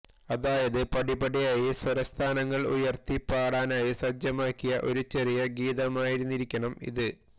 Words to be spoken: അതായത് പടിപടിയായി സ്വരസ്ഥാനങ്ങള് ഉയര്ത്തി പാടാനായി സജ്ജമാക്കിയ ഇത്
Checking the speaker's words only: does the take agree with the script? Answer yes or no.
no